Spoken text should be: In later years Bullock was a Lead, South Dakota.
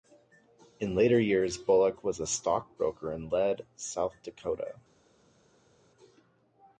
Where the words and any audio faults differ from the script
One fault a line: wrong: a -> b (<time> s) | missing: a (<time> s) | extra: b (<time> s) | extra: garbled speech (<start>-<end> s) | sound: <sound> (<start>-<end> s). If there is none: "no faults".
extra: stockbroker in (2.2 s)